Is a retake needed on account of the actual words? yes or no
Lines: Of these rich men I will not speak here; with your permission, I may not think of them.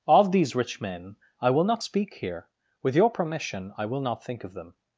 yes